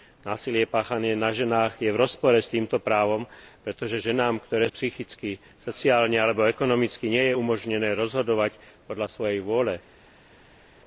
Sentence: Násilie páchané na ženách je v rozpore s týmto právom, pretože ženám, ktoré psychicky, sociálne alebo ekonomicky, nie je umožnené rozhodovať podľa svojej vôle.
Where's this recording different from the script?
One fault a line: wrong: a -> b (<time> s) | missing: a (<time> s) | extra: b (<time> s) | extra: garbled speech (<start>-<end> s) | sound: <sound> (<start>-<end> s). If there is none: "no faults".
no faults